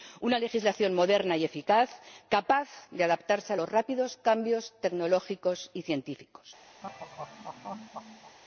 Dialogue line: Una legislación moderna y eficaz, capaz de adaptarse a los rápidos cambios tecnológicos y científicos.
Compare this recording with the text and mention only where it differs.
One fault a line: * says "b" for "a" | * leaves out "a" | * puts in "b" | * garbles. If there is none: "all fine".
all fine